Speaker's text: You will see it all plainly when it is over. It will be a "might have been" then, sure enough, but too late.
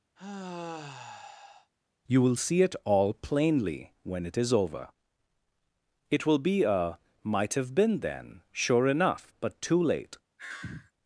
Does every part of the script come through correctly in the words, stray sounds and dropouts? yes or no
no